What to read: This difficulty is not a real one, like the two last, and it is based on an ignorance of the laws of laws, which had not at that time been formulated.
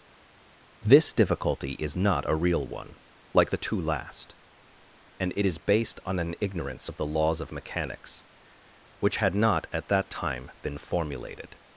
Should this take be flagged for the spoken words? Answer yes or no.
yes